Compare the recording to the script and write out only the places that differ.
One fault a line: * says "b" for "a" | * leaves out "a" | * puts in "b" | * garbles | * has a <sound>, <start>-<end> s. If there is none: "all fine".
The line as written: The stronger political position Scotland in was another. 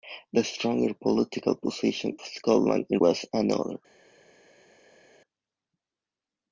all fine